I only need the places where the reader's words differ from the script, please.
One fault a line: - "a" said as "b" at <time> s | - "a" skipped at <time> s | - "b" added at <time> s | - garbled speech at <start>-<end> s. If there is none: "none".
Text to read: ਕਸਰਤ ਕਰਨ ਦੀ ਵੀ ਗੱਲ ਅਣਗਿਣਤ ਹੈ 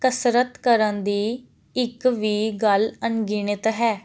- "ਇੱਕ" added at 1.7 s